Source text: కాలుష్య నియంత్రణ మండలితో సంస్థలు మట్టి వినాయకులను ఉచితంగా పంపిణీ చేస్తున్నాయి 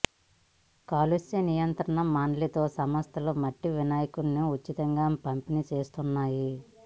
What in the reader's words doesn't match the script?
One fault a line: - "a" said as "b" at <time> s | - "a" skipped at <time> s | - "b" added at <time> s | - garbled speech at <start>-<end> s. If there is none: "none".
none